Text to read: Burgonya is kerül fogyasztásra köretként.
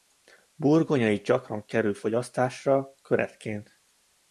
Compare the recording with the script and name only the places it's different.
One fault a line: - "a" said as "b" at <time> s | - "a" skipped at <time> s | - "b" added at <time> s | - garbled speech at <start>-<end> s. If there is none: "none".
- "gyakran" added at 1.2 s